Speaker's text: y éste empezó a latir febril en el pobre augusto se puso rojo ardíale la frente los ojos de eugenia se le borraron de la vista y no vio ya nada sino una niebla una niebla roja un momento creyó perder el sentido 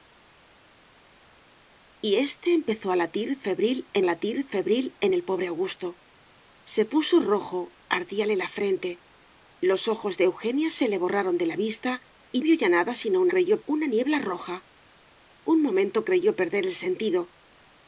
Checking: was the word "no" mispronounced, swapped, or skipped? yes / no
yes